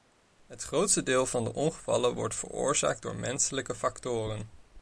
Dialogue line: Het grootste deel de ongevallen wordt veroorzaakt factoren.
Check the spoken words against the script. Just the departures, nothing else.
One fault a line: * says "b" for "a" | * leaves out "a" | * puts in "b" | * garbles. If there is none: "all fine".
* puts in "van"
* puts in "door menselijke"